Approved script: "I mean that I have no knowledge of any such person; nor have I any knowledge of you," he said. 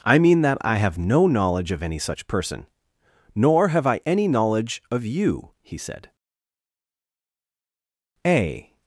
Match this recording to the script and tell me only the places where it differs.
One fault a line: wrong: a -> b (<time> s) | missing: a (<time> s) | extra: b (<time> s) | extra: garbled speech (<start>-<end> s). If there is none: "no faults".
extra: A (8.2 s)